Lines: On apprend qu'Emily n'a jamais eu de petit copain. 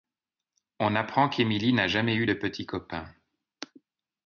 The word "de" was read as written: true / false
true